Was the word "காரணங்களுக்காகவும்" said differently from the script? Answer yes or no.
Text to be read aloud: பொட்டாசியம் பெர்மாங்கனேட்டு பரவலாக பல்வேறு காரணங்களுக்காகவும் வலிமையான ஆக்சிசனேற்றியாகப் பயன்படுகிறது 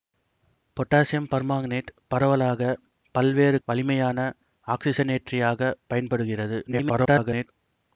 yes